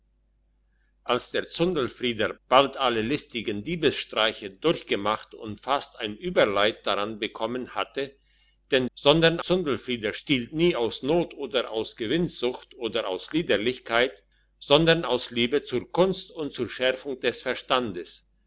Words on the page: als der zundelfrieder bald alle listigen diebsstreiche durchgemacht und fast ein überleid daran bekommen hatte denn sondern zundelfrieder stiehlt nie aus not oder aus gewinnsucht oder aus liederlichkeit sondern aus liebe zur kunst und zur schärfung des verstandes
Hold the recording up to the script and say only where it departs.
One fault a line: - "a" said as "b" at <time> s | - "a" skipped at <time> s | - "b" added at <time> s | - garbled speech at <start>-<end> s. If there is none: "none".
none